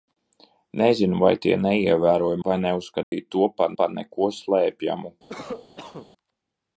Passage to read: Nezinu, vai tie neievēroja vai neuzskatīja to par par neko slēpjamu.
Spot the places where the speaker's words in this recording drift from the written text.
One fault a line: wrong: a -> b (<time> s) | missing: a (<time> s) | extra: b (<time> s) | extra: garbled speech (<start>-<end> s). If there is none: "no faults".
no faults